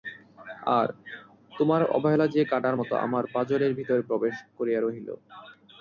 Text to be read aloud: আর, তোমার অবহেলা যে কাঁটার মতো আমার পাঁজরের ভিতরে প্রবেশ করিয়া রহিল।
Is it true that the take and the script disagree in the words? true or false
false